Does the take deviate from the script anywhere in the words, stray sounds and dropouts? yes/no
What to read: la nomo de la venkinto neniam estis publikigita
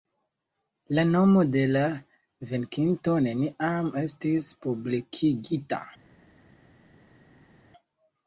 no